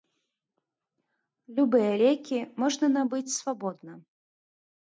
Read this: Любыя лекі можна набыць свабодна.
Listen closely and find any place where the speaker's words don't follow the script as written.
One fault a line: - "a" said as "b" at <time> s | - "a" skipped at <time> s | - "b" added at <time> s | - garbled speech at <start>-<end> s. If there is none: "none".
none